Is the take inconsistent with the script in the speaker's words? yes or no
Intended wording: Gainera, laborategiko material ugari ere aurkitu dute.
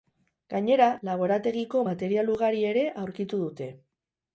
no